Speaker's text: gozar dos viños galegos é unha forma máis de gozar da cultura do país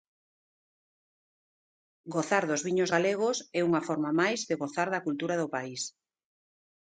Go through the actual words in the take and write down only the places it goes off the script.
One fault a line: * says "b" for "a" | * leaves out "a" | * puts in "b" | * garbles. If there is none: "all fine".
all fine